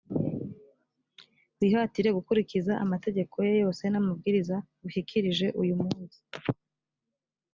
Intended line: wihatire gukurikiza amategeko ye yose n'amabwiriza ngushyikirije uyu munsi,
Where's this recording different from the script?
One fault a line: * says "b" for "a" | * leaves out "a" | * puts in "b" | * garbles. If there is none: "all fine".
all fine